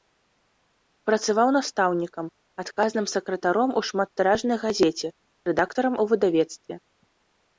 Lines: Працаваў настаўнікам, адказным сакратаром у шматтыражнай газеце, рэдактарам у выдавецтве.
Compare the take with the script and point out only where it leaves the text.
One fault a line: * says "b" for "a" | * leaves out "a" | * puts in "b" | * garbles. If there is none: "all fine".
all fine